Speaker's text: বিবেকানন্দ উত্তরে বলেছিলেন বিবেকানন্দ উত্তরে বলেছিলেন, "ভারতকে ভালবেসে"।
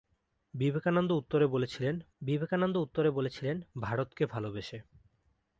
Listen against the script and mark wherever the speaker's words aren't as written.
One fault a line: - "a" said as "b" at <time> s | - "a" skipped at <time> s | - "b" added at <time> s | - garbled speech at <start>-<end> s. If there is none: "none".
none